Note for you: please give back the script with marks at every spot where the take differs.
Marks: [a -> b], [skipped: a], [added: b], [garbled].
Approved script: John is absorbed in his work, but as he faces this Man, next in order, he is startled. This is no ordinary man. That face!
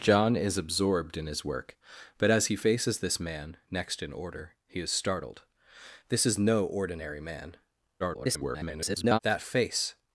John is absorbed in his work, but as he faces this Man, next in order, he is startled. This is no ordinary man. [garbled] That face!